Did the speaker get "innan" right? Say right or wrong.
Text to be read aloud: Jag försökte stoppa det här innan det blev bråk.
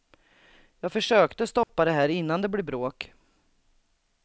right